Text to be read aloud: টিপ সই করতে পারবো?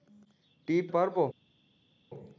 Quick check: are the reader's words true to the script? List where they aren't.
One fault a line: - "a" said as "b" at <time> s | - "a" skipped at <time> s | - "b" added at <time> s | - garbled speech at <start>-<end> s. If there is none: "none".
- "সই করতে" skipped at 0.8 s